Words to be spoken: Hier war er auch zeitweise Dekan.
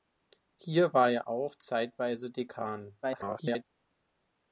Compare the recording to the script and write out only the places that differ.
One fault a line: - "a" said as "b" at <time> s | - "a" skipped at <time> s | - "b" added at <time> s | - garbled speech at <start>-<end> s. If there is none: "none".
- garbled speech at 3.0-3.6 s